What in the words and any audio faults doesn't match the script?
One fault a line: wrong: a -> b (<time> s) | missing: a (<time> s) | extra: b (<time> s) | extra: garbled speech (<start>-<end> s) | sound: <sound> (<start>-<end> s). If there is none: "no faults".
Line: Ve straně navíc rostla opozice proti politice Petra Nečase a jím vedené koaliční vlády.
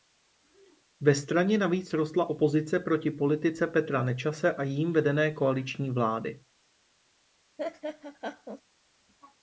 sound: laugh (7.6-8.6 s)